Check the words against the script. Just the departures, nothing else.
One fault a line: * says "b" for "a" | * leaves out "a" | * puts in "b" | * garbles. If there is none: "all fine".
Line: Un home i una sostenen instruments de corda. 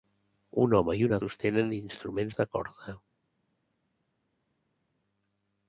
all fine